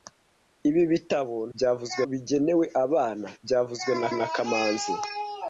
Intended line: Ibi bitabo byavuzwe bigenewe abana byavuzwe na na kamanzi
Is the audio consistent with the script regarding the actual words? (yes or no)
yes